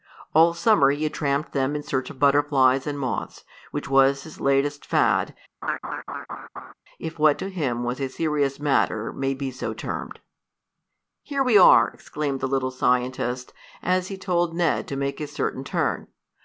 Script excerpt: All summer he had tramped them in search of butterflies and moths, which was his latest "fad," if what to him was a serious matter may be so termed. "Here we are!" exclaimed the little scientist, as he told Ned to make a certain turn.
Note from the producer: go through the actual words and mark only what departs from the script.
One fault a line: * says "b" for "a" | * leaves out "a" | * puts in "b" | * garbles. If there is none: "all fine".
all fine